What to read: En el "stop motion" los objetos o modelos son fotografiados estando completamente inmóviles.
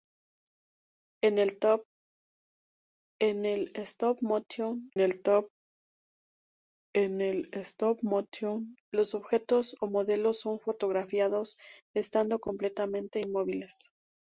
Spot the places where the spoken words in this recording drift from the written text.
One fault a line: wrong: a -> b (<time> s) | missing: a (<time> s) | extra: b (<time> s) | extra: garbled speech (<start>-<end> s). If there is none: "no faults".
extra: el stop motion (5.0 s)